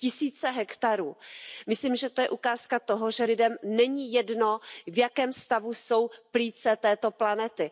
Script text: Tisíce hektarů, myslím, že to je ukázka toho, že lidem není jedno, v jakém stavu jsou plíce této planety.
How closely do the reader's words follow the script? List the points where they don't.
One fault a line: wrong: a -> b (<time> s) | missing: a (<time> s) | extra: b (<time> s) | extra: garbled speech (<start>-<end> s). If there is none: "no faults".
no faults